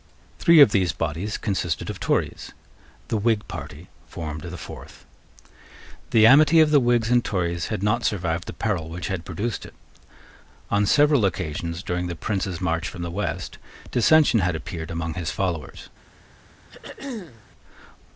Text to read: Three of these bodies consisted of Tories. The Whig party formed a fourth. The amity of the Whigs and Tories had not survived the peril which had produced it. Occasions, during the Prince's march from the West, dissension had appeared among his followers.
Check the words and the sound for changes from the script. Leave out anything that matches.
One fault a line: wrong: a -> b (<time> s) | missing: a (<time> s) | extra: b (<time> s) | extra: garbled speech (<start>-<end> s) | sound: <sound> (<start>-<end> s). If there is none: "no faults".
wrong: a -> the (4.4 s)
extra: On several (10.7 s)
sound: throat clearing (16.7-17.5 s)